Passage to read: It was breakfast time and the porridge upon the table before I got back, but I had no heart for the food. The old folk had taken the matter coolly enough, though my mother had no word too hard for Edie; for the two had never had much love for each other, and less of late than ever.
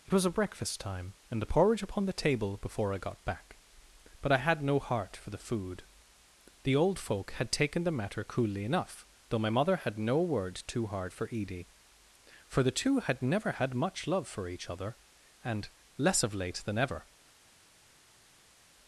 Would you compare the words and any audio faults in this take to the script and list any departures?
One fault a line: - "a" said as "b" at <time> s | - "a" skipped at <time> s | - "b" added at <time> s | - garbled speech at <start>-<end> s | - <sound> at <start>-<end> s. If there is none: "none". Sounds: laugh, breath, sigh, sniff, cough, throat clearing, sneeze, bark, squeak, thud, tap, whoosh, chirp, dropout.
- "a" added at 0.2 s